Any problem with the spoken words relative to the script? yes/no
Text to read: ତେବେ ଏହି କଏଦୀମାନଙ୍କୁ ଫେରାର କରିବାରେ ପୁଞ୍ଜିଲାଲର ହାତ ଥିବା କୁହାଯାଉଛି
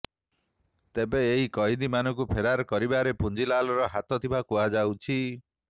no